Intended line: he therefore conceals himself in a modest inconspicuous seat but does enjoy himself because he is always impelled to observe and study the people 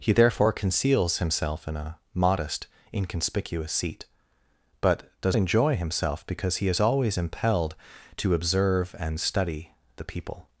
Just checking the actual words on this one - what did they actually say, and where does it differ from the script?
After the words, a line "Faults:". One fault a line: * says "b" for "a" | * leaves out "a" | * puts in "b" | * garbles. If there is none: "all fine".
he therefore conceals himself in a modest inconspicuous seat but does enjoy himself because he is always impelled to observe and study the people
Faults:
all fine